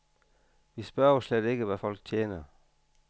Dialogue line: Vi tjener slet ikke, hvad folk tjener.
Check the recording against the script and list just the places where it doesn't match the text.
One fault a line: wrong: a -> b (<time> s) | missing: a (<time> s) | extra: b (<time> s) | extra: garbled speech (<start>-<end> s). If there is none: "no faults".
wrong: tjener -> spørger (0.8 s)